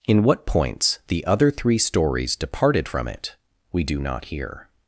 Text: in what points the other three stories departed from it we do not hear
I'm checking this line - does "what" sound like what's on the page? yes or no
yes